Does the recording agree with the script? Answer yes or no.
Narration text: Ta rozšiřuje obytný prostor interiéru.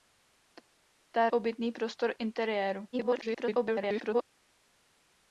no